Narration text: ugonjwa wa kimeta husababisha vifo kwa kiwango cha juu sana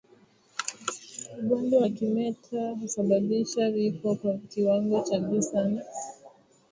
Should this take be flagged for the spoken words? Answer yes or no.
no